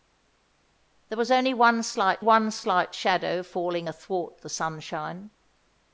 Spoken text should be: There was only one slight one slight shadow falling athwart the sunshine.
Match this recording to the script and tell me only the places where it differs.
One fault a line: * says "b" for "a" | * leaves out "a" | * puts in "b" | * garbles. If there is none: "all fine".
all fine